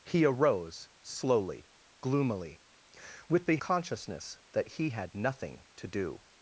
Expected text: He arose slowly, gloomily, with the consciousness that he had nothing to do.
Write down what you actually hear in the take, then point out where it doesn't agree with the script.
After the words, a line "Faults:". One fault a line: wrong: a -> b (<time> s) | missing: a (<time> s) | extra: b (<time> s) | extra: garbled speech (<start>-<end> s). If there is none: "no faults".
He arose slowly, gloomily, with the consciousness that he had nothing to do.
Faults:
no faults